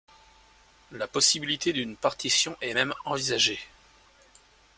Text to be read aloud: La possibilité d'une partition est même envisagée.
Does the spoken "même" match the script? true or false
true